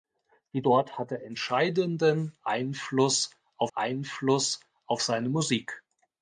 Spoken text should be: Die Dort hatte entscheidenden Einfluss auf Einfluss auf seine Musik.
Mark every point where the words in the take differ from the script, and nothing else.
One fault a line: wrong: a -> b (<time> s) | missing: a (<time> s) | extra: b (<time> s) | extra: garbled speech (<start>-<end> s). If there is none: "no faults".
no faults